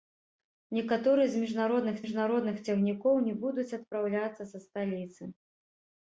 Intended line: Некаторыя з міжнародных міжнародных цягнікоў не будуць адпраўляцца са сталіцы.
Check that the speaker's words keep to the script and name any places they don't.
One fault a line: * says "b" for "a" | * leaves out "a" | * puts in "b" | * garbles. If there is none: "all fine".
all fine